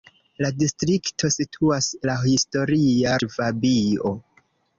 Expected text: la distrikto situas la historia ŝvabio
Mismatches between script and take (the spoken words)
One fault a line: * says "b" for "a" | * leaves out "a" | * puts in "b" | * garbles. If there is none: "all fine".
all fine